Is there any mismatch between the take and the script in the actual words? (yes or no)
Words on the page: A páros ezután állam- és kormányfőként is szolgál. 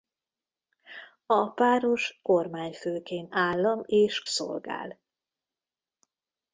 yes